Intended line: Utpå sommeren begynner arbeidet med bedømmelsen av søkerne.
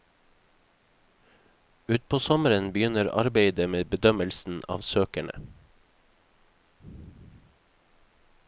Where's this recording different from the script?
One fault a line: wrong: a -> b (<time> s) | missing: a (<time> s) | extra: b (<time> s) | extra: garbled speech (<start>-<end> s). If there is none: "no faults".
no faults